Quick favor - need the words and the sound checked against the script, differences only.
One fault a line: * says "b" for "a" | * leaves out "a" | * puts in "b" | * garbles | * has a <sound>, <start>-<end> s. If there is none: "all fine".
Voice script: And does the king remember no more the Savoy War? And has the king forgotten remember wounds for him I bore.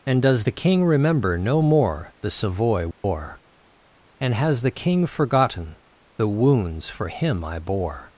* has a dropout, 2.9-3.0 s
* says "the" for "remember"